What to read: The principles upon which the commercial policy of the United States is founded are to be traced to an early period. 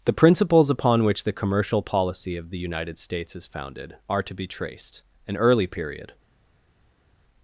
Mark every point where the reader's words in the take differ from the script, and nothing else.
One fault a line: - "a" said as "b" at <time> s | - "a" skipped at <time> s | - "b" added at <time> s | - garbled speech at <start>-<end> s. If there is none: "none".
- "to" skipped at 5.0 s